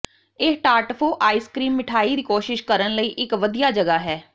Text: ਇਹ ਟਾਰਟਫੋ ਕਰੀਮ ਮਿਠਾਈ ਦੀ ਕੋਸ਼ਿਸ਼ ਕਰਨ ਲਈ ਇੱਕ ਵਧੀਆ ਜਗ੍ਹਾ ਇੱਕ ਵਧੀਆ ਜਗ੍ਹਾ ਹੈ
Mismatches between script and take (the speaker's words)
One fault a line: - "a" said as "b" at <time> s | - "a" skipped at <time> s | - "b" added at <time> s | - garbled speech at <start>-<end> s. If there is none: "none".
- "ਆਈਸ" added at 1.2 s
- "ਇੱਕ ਵਧੀਆ ਜਗ੍ਹਾ" skipped at 4.0 s